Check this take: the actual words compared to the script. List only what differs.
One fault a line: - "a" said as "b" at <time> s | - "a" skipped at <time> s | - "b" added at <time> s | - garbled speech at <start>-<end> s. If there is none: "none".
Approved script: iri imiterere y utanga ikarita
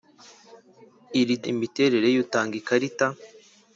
none